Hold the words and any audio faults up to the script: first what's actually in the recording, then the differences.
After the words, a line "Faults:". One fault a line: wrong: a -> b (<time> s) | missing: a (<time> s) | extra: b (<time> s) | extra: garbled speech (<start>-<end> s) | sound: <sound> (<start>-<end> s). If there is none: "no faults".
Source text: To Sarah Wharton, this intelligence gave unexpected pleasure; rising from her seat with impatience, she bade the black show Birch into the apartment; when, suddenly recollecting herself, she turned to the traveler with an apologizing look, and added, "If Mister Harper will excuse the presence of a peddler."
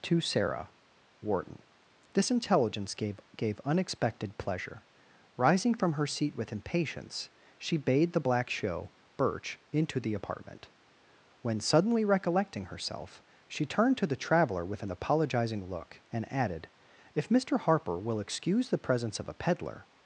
To Sarah Wharton, this intelligence gave gave unexpected pleasure; rising from her seat with impatience, she bade the black show Birch into the apartment; when, suddenly recollecting herself, she turned to the traveler with an apologizing look, and added, "If Mister Harper will excuse the presence of a peddler."
Faults:
extra: gave (3.4 s)